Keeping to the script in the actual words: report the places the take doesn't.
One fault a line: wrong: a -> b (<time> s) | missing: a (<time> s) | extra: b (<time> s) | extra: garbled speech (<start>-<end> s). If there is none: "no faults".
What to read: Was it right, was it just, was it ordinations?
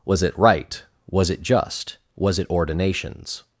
no faults